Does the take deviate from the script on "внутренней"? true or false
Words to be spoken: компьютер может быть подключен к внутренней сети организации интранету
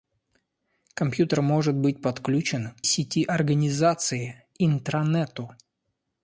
true